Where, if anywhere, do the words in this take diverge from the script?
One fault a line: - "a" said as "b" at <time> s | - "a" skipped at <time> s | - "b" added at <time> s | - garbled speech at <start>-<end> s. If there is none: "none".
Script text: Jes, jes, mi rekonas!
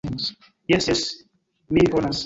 none